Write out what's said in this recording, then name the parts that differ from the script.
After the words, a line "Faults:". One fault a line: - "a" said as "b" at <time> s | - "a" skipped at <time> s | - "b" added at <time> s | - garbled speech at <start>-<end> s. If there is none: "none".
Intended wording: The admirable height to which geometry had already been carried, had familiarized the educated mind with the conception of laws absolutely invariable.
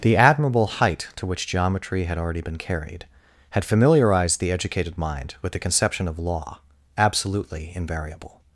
The admirable height to which geometry had already been carried, had familiarized the educated mind with the conception of law absolutely invariable.
Faults:
- "laws" said as "law" at 6.2 s